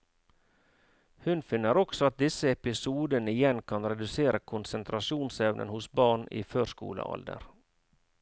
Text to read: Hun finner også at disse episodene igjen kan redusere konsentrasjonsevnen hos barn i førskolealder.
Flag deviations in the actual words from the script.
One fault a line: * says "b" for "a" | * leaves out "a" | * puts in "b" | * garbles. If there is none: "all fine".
all fine